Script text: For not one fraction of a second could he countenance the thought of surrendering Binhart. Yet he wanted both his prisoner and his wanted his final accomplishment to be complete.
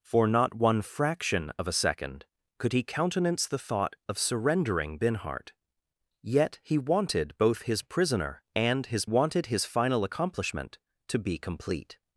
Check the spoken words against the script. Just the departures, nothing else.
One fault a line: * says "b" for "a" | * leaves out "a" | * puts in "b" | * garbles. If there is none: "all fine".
all fine